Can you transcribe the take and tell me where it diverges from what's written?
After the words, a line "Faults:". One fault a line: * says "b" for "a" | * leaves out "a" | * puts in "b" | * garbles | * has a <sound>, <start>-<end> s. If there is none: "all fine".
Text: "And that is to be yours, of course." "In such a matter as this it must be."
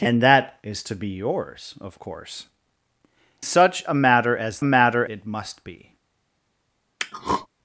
"And that is to be yours, of course." "Such a matter as matter it must be."
Faults:
* leaves out "In"
* says "matter" for "this"
* has a throat clearing, 7.0-7.5 s